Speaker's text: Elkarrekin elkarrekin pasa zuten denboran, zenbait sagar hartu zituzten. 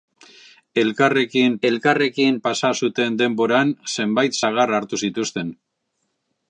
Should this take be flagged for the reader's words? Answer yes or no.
no